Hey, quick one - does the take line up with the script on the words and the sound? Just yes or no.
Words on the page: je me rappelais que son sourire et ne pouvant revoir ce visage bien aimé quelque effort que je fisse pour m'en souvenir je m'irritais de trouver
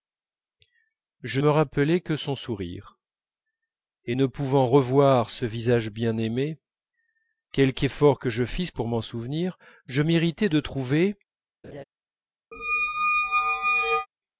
no